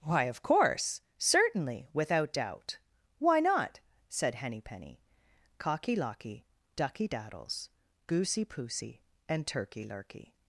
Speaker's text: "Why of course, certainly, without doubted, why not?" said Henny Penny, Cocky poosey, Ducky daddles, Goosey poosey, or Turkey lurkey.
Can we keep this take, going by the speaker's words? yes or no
no